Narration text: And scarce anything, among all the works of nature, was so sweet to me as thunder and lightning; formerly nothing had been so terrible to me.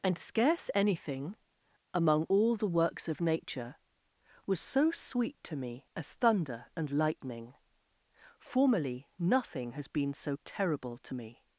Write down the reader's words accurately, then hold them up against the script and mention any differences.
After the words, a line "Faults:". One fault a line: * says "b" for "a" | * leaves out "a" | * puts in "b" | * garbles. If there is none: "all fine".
And scarce anything, among all the works of nature, was so sweet to me as thunder and lightning; formerly nothing has been so terrible to me.
Faults:
* says "has" for "had"